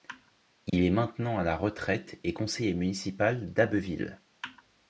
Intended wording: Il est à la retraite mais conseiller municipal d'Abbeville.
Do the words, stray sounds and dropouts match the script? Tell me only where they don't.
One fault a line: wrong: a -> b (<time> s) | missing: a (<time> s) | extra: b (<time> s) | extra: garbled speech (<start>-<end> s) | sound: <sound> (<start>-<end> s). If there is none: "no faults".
sound: dropout (0.7-0.7 s)
extra: maintenant (0.9 s)
wrong: mais -> et (2.2 s)